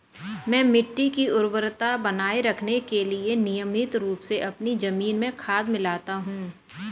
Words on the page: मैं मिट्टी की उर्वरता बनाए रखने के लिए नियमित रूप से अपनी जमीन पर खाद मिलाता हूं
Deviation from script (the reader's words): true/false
true